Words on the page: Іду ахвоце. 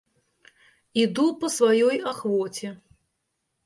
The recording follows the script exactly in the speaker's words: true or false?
false